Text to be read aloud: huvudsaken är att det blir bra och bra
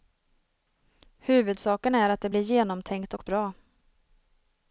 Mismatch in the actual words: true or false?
true